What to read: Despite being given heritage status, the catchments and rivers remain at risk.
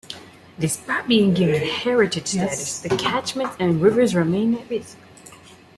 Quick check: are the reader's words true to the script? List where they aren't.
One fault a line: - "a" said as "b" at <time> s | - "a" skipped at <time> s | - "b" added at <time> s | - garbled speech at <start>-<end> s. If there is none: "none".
none